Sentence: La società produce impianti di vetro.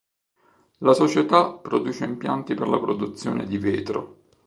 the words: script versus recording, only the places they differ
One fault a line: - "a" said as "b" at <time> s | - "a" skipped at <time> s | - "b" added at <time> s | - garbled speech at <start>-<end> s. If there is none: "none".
- "per la produzione" added at 2.5 s